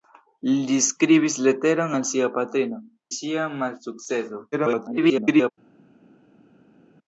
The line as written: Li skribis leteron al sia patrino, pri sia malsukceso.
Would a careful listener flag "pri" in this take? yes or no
yes